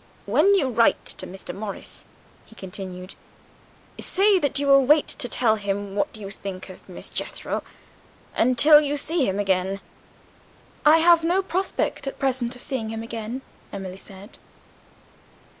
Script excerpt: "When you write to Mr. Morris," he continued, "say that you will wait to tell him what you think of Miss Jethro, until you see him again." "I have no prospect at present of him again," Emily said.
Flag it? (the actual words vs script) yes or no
yes